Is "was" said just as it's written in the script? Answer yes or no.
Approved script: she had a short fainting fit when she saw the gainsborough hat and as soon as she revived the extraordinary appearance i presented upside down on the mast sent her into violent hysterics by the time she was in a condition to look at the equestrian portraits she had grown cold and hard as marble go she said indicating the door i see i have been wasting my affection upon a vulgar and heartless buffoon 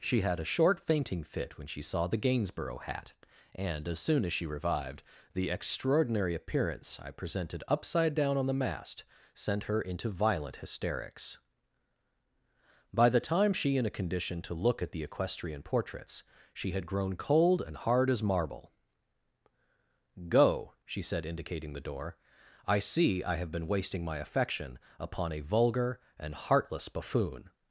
no